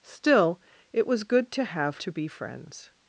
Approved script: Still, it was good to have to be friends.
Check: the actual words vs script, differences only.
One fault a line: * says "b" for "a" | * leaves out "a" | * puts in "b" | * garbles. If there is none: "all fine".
all fine